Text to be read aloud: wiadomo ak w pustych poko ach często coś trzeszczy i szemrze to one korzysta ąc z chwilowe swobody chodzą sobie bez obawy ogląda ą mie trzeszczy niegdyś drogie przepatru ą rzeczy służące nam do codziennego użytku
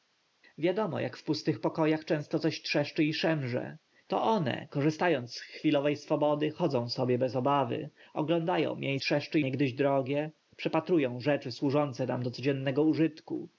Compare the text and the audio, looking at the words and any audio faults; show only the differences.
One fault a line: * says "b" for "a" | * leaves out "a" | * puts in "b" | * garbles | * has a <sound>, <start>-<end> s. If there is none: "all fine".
all fine